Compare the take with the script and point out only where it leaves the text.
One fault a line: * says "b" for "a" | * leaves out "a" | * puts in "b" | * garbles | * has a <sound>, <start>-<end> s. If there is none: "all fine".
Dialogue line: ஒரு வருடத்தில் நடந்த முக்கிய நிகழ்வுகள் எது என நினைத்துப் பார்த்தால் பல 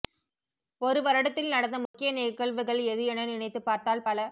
* has a dropout, 1.9-1.9 s